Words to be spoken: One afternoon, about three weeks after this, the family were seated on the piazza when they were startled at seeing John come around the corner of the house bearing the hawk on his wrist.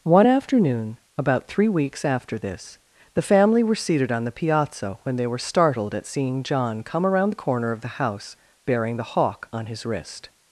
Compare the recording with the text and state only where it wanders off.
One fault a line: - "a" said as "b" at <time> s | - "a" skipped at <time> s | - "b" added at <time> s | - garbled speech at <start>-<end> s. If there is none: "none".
none